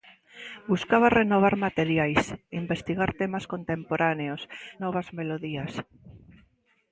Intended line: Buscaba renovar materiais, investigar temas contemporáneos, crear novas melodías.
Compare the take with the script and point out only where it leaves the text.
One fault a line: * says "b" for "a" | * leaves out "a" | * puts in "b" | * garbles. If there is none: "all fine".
* leaves out "crear"